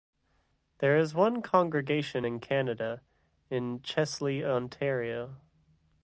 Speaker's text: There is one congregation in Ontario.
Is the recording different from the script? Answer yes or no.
yes